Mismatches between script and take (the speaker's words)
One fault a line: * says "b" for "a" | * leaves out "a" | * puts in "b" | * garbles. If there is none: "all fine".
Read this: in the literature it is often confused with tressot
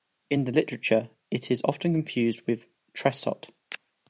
all fine